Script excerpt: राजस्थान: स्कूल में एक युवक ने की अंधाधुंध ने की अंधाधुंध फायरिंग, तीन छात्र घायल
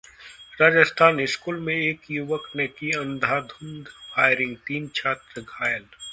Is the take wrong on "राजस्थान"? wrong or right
right